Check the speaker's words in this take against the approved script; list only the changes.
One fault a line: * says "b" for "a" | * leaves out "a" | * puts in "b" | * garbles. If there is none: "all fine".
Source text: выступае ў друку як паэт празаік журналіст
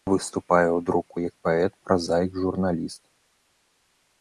all fine